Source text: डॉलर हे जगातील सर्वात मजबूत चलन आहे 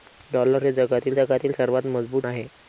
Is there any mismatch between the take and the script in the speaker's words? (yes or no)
yes